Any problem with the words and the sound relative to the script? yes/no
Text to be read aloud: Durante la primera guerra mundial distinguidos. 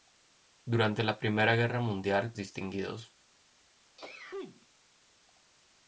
yes